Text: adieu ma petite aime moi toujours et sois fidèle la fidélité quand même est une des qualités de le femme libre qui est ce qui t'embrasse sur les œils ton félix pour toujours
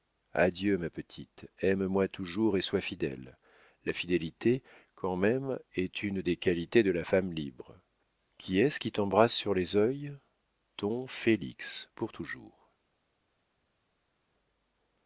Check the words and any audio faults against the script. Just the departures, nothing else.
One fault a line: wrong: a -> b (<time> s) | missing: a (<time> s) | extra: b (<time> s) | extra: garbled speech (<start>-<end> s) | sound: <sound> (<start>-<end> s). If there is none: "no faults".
wrong: le -> la (6.9 s)